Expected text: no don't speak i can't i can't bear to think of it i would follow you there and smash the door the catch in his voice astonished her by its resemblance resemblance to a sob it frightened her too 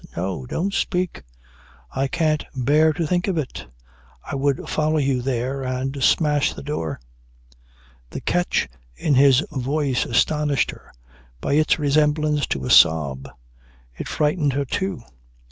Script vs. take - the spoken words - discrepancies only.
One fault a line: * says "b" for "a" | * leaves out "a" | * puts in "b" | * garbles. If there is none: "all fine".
* leaves out "i can't"
* leaves out "resemblance"